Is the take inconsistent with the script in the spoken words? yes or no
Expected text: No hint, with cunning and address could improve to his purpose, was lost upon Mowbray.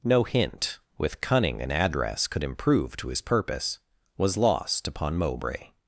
no